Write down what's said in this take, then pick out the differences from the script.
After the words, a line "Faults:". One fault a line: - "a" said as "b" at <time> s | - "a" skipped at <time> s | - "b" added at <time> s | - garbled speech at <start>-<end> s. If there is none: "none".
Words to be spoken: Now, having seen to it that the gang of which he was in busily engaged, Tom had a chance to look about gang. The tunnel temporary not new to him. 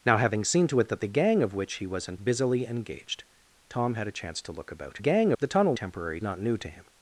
Now, having seen to it that the gang of which he was in busily engaged, Tom had a chance to look about gang. The tunnel temporary not new to him.
Faults:
none